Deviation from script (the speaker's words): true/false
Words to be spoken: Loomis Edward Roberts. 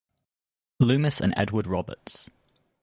true